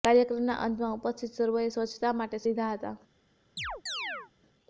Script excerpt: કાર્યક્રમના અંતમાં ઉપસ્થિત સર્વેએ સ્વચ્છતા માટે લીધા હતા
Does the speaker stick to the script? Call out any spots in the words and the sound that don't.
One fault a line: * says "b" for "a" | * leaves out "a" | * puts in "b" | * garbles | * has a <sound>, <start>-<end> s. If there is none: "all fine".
* has a chirp, 3.6-4.3 s